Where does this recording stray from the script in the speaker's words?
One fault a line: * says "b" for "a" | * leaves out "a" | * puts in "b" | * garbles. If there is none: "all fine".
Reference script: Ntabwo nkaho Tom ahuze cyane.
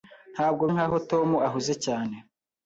all fine